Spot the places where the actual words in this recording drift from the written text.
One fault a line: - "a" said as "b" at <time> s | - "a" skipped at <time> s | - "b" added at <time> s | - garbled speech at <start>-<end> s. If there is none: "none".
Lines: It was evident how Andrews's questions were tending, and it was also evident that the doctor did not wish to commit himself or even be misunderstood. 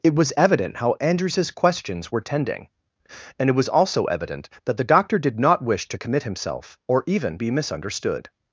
none